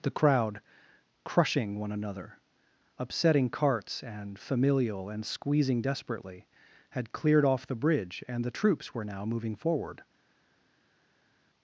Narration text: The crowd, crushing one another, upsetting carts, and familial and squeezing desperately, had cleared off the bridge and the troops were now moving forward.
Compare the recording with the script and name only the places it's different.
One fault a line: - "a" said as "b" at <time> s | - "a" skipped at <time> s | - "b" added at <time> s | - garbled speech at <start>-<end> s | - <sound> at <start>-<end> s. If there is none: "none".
none